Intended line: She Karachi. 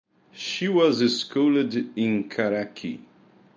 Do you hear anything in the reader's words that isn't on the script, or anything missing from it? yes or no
yes